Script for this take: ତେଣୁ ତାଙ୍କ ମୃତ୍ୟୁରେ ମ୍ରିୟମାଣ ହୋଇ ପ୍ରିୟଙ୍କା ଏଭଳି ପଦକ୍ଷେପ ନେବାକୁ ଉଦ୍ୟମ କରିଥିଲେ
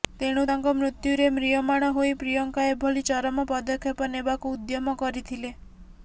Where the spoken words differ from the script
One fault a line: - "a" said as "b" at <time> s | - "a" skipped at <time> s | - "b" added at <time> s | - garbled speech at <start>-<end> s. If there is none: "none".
- "ଚରମ" added at 3.1 s